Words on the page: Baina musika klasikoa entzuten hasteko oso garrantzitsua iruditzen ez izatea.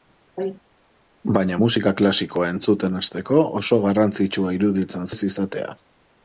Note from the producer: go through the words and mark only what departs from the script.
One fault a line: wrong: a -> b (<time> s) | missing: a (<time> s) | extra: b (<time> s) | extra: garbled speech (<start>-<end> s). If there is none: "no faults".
no faults